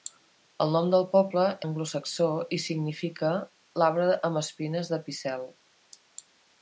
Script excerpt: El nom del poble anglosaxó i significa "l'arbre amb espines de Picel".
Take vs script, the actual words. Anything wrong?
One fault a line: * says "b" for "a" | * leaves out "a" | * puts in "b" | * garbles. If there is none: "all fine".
all fine